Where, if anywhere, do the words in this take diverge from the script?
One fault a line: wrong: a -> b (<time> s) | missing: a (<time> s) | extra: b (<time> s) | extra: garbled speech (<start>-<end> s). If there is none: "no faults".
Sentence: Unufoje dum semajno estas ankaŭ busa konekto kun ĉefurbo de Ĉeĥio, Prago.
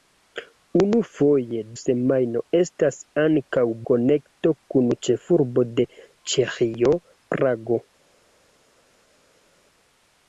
missing: dum (1.6 s)
missing: busa (3.7 s)